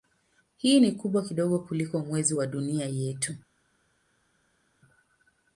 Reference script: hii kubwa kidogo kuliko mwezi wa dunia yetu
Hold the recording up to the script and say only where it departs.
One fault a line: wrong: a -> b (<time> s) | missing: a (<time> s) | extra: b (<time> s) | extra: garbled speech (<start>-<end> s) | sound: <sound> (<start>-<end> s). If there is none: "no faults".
extra: ni (0.8 s)